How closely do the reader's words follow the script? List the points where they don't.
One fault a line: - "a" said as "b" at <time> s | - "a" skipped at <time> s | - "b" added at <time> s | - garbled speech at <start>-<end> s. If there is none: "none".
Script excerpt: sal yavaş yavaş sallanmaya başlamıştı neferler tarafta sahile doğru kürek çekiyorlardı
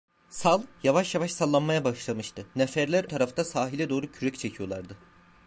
none